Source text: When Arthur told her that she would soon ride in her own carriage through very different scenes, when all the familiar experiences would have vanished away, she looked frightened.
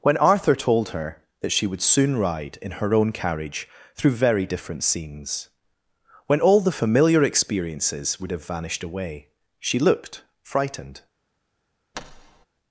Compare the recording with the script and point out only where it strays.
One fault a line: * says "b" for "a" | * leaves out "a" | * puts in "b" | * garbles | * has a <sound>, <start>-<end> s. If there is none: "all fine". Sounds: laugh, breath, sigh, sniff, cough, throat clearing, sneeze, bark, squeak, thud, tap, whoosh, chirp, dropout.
* has a thud, 11.9-12.5 s